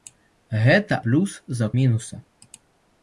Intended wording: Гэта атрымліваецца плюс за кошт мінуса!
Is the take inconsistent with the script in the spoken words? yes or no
yes